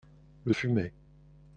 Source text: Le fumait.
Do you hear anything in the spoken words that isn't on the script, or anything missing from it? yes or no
no